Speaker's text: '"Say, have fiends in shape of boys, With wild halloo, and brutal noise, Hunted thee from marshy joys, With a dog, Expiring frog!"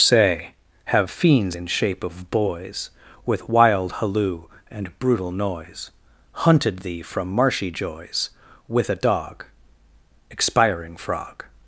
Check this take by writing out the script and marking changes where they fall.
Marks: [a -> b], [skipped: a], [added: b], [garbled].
'"Say, have fiends in shape of boys, With wild halloo, and brutal noise, Hunted thee from marshy joys, With a dog, Expiring frog!"